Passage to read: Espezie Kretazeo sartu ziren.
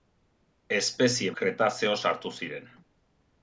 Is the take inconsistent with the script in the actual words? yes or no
no